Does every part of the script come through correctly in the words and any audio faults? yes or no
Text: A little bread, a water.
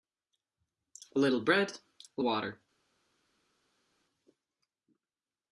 yes